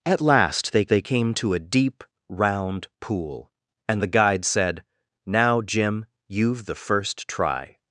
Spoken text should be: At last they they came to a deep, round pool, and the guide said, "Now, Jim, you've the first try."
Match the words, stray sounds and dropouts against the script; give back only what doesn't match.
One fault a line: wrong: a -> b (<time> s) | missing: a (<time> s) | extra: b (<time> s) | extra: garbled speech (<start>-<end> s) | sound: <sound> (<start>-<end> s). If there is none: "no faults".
no faults